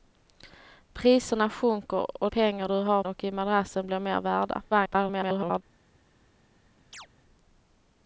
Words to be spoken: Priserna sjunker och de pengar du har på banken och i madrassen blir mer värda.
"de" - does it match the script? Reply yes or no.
no